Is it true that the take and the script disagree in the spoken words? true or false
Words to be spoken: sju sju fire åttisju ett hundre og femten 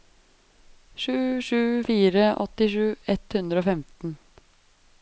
false